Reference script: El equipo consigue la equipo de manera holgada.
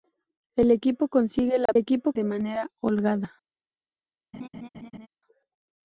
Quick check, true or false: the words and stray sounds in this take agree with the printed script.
false